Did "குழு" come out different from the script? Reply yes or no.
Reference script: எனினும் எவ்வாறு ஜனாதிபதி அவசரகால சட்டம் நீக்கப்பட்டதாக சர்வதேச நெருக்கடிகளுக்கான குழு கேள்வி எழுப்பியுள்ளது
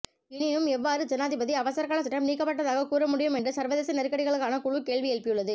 no